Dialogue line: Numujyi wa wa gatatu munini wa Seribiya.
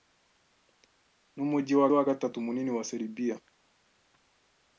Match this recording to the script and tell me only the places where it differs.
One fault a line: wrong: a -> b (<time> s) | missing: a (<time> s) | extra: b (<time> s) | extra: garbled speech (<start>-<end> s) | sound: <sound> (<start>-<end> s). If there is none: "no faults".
no faults